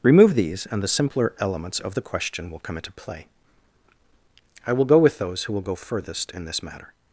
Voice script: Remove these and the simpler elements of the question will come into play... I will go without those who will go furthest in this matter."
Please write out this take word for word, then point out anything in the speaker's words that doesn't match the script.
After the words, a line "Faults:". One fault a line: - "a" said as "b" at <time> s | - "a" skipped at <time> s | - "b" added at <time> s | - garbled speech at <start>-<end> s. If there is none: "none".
Remove these and the simpler elements of the question will come into play... I will go with those who will go furthest in this matter."
Faults:
- "without" said as "with" at 5.0 s